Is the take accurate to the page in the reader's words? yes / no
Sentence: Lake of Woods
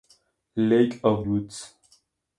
yes